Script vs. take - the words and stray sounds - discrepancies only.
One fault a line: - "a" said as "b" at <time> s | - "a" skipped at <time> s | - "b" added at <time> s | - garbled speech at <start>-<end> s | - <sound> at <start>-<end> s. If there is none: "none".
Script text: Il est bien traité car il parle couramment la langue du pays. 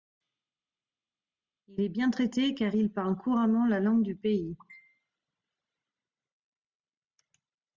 none